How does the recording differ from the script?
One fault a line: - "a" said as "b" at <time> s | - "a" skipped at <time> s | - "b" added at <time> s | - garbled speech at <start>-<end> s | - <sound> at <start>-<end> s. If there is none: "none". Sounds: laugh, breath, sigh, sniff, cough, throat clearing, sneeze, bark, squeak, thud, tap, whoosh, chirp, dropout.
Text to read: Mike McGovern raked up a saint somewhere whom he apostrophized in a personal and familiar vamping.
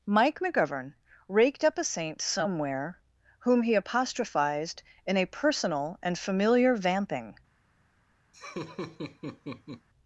- laugh at 8.3-9.9 s